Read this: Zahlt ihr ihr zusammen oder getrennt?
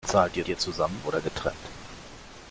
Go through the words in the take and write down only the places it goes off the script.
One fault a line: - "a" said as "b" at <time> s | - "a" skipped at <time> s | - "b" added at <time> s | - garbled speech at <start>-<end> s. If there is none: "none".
none